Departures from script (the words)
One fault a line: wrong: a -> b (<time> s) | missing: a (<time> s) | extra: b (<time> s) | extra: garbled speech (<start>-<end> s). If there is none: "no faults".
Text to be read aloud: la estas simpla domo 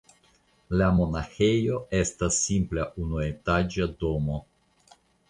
extra: monaĥejo (1.0 s)
extra: unuetaĝa (3.1 s)